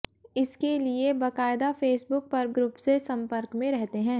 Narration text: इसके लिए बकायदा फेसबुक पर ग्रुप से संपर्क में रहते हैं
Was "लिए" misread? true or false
false